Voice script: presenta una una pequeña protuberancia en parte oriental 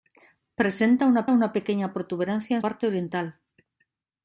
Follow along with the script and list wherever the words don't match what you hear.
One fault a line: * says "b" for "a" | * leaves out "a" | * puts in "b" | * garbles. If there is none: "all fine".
all fine